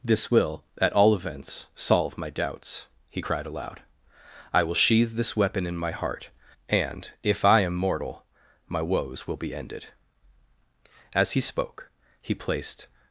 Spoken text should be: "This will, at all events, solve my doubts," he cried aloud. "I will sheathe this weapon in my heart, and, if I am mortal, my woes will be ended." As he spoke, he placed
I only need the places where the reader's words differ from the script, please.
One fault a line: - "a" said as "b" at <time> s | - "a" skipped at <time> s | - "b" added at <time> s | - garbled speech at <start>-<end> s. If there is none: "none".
none